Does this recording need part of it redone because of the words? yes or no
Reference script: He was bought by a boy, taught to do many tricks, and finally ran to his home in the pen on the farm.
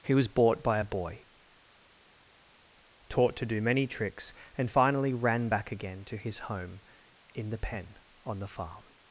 yes